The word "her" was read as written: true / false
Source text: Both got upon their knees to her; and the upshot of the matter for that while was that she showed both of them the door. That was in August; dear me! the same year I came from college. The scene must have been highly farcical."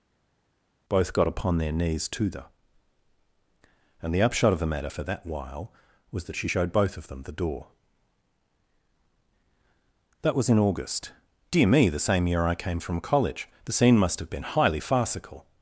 false